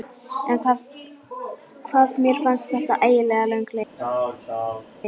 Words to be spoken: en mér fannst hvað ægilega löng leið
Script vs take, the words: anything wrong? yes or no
yes